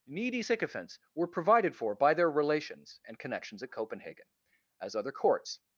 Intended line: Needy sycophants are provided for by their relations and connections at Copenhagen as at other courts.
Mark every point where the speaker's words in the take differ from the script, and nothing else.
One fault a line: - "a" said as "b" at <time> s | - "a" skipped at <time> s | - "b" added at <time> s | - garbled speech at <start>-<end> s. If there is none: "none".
- "are" said as "were" at 1.1 s
- "at" skipped at 4.9 s